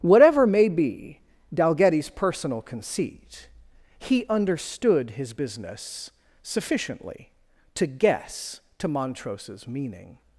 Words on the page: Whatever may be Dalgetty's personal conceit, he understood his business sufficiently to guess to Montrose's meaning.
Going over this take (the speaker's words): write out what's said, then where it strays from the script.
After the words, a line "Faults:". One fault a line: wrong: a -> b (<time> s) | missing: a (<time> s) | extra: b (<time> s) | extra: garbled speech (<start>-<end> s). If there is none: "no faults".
Whatever may be Dalgetty's personal conceit, he understood his business sufficiently to guess to Montrose's meaning.
Faults:
no faults